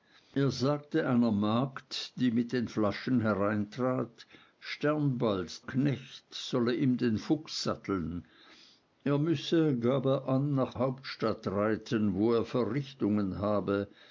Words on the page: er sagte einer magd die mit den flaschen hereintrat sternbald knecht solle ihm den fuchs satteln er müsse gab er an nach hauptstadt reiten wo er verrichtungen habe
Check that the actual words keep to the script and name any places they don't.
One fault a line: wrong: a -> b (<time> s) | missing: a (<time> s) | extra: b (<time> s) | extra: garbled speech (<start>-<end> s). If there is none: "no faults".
no faults